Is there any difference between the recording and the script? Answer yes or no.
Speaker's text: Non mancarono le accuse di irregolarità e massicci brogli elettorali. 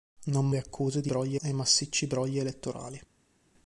yes